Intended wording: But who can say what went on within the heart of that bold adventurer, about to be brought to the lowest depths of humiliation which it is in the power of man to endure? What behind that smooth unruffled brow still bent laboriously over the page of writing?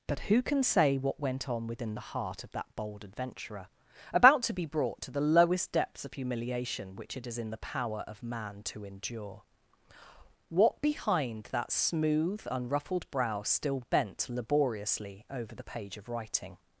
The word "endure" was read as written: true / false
true